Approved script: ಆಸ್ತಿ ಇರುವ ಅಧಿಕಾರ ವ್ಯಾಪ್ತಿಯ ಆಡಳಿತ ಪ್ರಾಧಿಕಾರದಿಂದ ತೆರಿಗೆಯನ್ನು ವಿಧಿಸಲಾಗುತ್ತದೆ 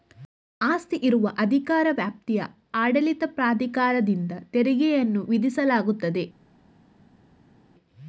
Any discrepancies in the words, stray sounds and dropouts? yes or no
no